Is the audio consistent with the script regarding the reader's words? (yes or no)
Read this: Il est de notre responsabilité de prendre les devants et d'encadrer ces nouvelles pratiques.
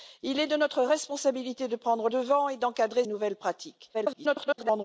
no